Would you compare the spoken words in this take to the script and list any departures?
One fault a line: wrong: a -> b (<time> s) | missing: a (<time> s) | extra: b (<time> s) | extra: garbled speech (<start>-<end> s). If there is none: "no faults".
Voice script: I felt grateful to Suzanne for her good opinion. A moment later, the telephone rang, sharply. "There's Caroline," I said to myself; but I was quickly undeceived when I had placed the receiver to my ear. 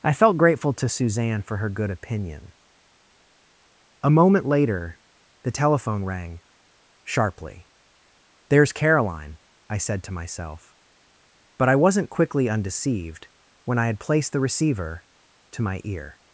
wrong: was -> wasn't (11.8 s)